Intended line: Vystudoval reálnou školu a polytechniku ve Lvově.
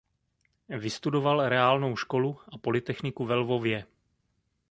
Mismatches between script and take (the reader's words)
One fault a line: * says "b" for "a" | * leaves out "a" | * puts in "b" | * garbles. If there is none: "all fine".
all fine